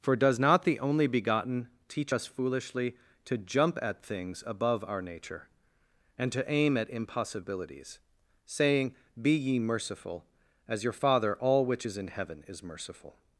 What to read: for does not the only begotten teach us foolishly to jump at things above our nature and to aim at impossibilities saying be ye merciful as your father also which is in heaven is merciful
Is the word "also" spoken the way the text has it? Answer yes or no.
no